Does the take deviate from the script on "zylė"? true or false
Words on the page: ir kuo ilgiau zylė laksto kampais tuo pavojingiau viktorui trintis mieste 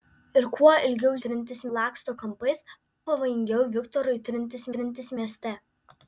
true